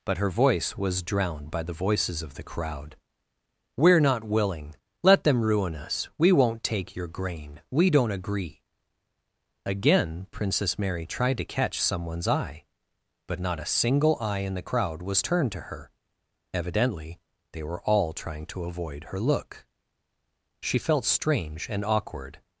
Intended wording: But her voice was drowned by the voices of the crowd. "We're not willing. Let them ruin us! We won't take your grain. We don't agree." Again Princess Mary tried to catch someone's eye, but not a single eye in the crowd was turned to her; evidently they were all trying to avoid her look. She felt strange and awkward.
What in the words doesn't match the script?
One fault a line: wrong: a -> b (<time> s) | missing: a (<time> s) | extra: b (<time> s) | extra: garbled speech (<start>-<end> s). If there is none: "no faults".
no faults